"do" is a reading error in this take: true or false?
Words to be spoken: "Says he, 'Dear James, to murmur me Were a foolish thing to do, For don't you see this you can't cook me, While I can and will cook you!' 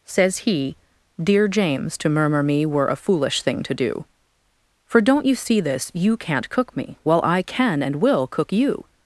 false